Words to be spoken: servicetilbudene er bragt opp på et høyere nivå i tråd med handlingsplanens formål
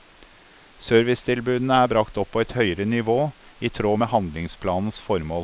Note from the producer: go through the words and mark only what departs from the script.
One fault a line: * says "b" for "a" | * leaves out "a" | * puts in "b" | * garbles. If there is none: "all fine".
all fine